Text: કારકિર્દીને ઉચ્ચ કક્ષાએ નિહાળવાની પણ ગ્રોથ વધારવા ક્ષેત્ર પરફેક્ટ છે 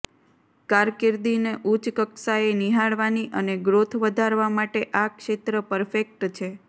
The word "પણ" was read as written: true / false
false